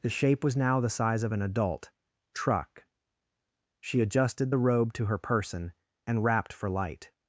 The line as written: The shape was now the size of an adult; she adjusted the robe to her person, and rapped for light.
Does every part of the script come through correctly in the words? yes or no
no